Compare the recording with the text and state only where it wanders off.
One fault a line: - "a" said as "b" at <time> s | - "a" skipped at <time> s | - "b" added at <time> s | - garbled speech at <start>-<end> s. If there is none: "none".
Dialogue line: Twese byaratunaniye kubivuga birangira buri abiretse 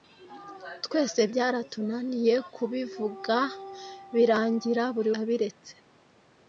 none